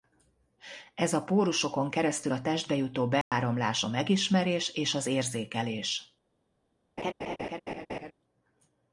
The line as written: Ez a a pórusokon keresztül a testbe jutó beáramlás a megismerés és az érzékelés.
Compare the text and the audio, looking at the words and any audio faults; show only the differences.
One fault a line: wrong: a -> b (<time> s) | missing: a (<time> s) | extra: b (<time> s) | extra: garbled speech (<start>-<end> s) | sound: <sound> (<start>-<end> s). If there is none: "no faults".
missing: a (1.2 s)
sound: dropout (3.2-3.3 s)
sound: laugh (7.0-8.1 s)